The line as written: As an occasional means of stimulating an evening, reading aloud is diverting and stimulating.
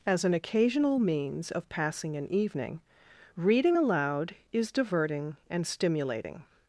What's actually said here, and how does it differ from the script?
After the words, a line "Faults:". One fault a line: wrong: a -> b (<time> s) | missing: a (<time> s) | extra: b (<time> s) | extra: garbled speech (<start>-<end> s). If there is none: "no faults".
As an occasional means of passing an evening, reading aloud is diverting and stimulating.
Faults:
wrong: stimulating -> passing (1.7 s)